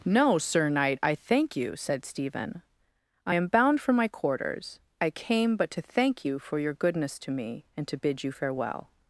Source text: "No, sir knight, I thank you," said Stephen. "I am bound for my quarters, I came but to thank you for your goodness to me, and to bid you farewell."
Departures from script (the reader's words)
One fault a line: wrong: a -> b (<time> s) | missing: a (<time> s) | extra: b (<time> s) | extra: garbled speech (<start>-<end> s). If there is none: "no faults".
no faults